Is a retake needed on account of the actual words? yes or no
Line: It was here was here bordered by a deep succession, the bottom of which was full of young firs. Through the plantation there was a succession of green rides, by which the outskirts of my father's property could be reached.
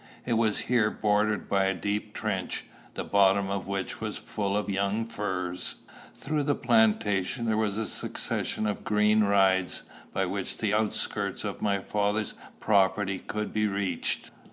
yes